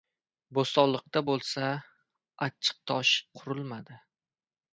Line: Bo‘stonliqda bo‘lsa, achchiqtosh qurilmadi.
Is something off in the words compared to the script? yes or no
no